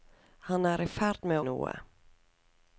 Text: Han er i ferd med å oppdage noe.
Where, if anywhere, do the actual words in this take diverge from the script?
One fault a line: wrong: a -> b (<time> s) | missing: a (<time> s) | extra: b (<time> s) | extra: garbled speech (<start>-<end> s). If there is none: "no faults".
missing: å oppdage (1.4 s)